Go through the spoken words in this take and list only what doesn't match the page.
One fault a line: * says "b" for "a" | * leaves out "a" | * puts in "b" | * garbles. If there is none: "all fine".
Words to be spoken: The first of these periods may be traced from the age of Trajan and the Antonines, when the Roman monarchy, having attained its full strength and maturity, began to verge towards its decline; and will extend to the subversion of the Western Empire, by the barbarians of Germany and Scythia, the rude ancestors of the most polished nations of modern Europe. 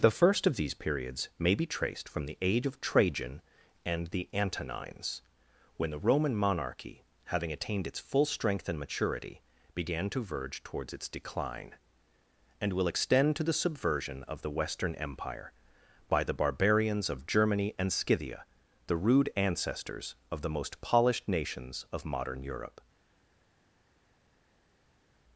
all fine